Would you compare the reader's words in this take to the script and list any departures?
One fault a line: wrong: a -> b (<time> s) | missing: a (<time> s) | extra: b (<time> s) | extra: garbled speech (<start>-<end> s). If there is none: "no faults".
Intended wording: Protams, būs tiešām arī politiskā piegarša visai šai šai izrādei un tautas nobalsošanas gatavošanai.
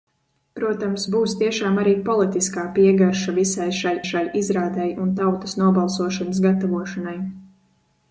no faults